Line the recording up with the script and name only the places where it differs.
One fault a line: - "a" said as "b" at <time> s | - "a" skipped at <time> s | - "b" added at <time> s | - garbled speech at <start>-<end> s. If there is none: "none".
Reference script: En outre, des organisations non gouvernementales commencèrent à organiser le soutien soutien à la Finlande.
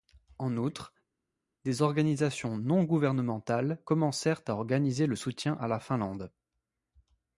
- "soutien" skipped at 5.5 s